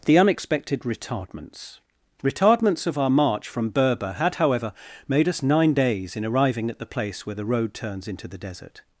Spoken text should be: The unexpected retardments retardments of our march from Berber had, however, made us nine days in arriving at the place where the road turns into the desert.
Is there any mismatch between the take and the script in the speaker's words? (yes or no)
no